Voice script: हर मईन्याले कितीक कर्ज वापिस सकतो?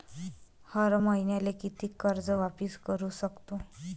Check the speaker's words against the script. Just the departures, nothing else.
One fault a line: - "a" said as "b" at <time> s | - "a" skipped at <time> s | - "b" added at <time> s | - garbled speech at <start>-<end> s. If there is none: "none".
- "करू" added at 2.9 s